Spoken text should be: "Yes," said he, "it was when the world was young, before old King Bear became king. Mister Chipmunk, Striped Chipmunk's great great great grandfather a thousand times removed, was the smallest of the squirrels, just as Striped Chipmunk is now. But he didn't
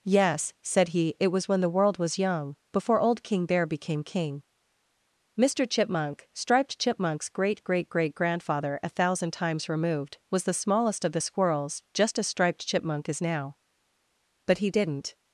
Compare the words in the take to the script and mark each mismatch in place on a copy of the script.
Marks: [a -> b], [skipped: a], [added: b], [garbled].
"Yes," said he, "it was when the world was young, before old King Bear became king. Mister Chipmunk, Striped Chipmunk's great great great grandfather a thousand times removed, was the smallest of the squirrels, just as Striped Chipmunk is now. But he didn't